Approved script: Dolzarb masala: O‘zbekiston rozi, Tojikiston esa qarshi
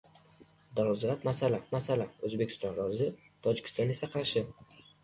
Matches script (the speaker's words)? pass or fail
fail